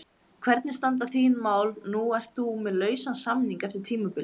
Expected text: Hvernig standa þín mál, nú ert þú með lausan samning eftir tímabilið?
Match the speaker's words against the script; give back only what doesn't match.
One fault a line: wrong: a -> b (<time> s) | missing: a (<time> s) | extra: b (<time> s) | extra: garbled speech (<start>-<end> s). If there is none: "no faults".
no faults